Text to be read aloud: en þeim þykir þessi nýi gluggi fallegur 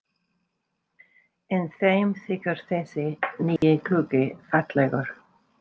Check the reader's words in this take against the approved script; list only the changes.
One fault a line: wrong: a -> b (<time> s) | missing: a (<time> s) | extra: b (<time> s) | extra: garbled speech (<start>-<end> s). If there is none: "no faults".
no faults